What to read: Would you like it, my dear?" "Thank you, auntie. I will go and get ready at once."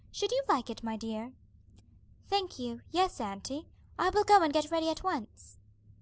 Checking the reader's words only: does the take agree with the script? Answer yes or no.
no